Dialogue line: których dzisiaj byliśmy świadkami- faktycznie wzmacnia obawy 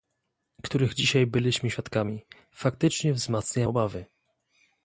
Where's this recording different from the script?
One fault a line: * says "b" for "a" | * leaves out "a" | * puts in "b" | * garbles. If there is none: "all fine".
all fine